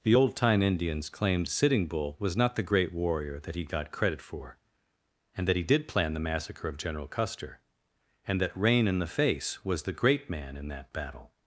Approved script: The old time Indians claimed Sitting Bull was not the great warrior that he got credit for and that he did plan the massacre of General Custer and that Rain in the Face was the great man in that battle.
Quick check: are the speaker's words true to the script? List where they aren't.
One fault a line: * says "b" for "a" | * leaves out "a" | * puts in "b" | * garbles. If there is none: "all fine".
all fine